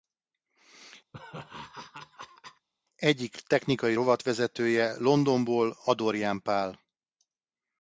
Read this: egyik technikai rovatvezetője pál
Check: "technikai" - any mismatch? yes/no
no